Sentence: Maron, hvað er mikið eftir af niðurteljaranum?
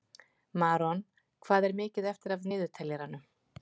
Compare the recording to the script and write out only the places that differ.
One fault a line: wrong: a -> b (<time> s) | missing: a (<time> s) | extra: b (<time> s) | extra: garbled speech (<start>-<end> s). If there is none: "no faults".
no faults